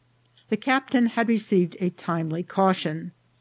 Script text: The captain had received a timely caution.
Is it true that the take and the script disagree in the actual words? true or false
false